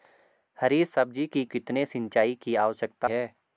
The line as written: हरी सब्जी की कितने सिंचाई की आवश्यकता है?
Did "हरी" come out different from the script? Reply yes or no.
no